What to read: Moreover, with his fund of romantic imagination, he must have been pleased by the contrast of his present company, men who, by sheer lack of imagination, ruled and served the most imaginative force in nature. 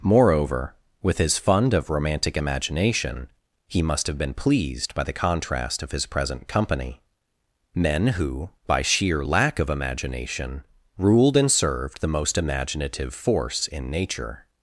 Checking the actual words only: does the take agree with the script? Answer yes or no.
yes